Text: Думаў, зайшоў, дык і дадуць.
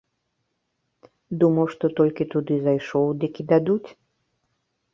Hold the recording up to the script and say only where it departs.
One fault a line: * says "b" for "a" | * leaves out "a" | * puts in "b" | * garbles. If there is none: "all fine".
* puts in "што толькі туды"